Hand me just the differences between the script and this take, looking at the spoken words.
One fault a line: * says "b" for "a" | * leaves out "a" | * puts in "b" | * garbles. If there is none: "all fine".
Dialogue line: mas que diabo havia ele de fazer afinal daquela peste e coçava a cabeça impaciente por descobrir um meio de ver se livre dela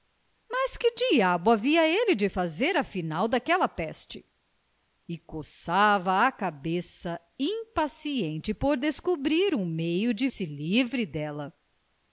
* leaves out "ver"